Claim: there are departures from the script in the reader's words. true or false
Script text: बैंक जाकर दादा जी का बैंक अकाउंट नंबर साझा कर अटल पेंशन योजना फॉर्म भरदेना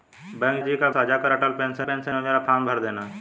true